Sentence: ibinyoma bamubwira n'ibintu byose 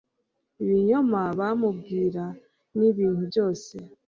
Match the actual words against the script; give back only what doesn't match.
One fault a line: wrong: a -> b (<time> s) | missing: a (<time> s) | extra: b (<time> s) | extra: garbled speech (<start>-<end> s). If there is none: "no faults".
no faults